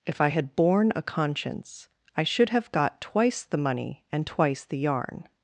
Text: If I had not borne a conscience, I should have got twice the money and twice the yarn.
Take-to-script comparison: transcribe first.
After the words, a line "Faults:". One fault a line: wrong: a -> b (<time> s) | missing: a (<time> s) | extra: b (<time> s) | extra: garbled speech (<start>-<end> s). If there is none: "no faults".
If I had borne a conscience, I should have got twice the money and twice the yarn.
Faults:
missing: not (0.6 s)